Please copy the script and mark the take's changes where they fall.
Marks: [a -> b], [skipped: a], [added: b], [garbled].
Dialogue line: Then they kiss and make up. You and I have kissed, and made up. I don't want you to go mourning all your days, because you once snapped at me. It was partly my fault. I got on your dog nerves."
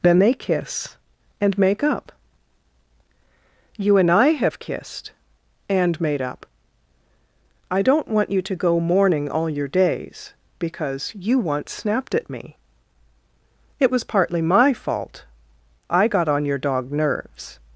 Then they kiss and make up. You and I have kissed, and made up. I don't want you to go mourning all your days, because you once snapped at me. It was partly my fault. I got on your dog nerves."